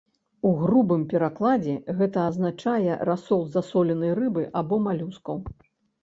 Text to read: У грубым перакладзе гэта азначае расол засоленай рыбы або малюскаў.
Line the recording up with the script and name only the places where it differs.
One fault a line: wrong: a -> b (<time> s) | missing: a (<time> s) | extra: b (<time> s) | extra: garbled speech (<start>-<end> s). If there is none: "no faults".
no faults